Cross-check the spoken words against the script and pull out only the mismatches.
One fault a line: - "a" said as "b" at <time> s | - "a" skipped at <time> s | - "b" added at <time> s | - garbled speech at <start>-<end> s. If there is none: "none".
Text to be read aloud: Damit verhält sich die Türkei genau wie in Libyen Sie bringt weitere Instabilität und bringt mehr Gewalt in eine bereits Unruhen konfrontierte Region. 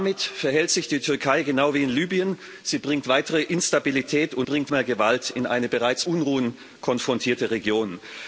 none